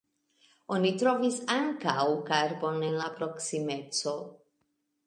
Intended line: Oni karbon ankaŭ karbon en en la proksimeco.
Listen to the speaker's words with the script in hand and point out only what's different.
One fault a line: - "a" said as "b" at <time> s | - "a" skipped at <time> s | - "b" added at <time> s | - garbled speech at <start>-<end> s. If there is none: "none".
- "karbon" said as "trovis" at 1.0 s
- "en" skipped at 3.0 s